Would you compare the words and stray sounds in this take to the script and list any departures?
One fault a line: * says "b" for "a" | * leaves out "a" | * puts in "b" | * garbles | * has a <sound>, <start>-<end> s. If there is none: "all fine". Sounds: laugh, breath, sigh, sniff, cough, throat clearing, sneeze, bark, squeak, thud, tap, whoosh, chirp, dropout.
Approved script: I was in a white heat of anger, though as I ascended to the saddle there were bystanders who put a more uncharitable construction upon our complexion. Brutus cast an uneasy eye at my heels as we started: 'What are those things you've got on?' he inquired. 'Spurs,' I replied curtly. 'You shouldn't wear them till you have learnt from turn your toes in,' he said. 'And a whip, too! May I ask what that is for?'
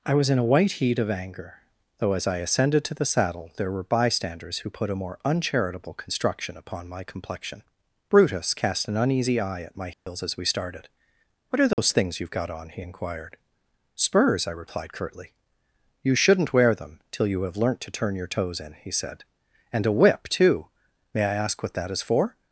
* says "my" for "our"
* has a dropout, 9.9-10.1 s
* has a dropout, 11.7-11.8 s
* says "to" for "from"